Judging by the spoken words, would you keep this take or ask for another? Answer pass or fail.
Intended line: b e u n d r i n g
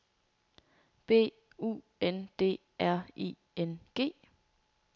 fail